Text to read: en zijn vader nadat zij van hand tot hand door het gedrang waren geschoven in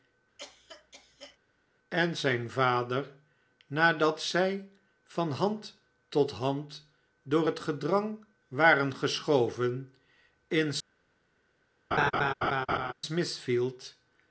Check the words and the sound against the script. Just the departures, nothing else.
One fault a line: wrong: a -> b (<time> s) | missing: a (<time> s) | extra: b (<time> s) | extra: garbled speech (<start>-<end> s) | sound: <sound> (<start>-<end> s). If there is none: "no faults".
sound: cough (0.4-1.4 s)
sound: laugh (11.9-12.9 s)